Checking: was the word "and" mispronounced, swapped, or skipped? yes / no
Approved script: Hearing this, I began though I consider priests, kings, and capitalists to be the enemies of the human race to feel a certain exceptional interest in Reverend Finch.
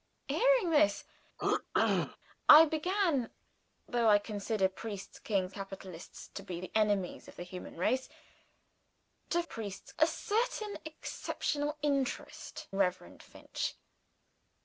yes